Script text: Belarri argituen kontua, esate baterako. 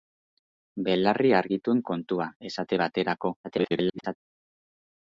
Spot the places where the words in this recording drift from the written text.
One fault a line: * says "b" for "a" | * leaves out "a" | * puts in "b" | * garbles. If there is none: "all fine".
* garbles